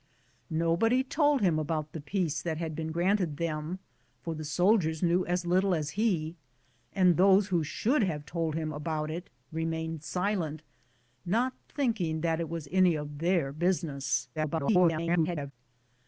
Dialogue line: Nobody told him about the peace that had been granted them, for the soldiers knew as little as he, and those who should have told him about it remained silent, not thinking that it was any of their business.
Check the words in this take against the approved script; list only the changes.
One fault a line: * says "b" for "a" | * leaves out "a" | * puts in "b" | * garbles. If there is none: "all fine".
* garbles